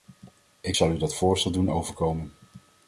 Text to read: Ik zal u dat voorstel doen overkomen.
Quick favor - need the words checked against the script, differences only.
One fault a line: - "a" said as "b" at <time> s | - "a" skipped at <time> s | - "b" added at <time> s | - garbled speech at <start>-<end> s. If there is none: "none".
none